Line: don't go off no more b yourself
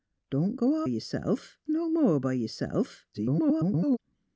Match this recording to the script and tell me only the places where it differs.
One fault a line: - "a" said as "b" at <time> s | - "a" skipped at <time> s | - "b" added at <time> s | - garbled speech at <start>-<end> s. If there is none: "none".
- "off" said as "yourself" at 0.9 s
- garbled speech at 3.1-4.0 s